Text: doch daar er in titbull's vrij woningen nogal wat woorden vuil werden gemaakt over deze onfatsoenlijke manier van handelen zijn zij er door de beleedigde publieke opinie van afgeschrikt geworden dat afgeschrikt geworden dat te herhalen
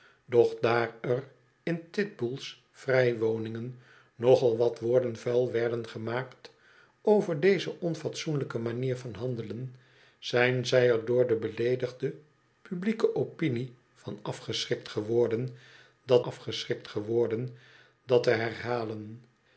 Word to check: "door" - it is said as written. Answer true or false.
true